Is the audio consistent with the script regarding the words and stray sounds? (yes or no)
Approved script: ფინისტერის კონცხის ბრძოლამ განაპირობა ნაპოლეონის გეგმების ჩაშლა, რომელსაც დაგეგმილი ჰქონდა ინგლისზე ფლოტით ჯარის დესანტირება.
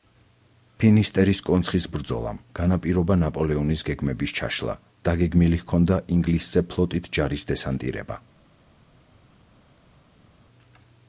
no